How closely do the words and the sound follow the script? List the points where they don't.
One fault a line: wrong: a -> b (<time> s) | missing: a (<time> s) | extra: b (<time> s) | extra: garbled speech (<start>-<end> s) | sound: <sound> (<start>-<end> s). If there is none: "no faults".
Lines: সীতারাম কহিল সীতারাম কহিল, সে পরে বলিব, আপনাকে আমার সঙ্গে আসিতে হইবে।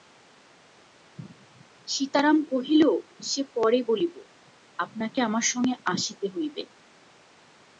missing: সীতারাম কহিল (2.8 s)